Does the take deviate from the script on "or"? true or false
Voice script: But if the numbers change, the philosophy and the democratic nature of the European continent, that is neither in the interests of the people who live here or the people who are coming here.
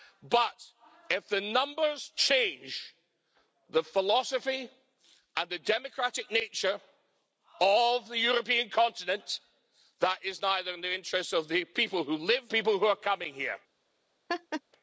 true